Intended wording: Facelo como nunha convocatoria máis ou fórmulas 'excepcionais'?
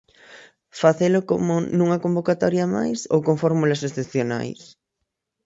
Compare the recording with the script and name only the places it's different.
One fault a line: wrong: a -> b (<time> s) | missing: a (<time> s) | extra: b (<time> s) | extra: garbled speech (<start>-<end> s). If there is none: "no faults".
extra: con (3.3 s)